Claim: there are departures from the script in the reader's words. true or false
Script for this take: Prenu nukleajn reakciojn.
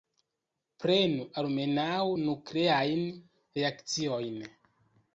true